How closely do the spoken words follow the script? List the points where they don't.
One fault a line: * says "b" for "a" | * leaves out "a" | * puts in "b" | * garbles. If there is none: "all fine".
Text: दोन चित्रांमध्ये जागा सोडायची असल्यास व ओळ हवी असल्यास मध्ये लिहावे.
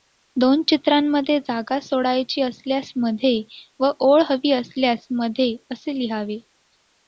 * puts in "मध्ये"
* puts in "असे"